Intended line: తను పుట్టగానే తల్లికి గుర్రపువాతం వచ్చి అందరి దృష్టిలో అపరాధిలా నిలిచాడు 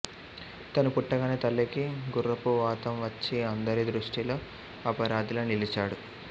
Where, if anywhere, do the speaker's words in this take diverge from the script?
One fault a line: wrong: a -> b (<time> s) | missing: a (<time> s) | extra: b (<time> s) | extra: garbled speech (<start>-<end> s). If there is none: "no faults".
no faults